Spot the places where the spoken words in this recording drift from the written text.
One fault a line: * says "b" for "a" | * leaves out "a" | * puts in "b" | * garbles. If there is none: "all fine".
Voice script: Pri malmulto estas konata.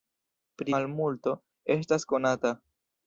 all fine